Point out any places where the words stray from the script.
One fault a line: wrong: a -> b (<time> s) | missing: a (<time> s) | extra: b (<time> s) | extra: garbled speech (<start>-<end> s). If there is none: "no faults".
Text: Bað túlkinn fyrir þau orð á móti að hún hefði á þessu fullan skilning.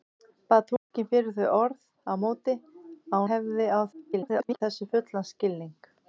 missing: hún (3.2 s)
extra: garbled speech (3.9-4.6 s)